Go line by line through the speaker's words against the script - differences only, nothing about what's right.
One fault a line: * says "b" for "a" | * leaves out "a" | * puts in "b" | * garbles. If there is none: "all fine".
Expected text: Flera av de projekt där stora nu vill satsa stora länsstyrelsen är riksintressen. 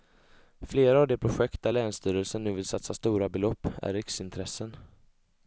* says "länsstyrelsen" for "stora"
* says "belopp" for "länsstyrelsen"